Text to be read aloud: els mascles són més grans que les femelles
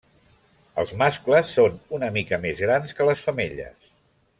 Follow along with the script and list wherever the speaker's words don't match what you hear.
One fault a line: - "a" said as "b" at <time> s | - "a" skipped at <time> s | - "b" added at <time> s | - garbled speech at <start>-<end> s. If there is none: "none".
- "una mica" added at 2.0 s